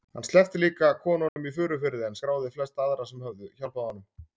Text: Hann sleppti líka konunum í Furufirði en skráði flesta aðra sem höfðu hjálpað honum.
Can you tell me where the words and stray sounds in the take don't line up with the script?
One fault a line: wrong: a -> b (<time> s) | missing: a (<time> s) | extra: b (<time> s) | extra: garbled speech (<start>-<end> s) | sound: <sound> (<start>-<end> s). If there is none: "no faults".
sound: dropout (1.3-1.4 s)